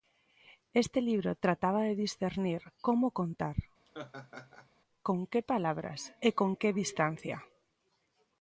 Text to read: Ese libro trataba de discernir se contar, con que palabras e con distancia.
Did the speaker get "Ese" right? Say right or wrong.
wrong